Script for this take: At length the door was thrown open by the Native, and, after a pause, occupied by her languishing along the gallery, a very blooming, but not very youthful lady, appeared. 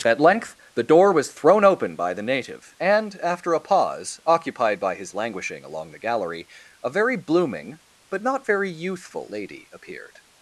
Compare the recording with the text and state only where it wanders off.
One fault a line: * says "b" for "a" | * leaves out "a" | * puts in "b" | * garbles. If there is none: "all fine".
* says "his" for "her"